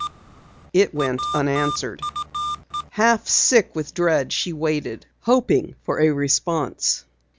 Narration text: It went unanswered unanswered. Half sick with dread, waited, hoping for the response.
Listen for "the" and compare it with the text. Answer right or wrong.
wrong